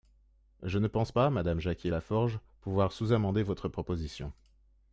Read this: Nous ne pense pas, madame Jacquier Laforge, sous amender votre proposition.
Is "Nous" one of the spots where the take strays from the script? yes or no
yes